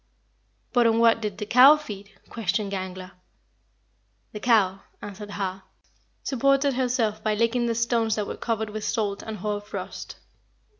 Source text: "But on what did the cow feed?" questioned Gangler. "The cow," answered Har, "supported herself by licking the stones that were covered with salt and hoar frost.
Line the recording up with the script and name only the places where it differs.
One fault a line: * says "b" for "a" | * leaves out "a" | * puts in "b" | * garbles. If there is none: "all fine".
all fine